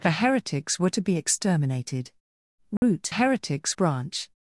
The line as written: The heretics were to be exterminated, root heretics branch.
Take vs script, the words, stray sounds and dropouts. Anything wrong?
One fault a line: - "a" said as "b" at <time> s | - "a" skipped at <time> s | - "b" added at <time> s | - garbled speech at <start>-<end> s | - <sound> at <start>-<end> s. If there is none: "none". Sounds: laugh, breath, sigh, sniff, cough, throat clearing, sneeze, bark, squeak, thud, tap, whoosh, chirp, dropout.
- dropout at 2.8-2.8 s